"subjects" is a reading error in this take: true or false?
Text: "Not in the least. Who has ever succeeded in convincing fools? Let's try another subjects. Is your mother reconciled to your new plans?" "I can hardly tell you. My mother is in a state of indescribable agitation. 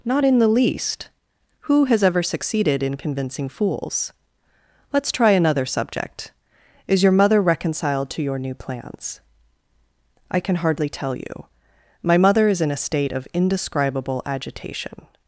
true